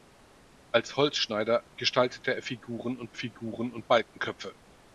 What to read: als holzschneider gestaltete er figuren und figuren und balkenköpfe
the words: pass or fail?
pass